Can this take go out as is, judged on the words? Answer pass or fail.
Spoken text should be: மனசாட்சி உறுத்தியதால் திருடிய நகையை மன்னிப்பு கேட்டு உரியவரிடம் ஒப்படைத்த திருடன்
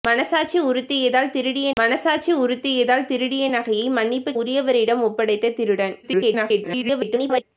fail